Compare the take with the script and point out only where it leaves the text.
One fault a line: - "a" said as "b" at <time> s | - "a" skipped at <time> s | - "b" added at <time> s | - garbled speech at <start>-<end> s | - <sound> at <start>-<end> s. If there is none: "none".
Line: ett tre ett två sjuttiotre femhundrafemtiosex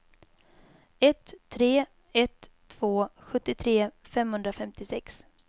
none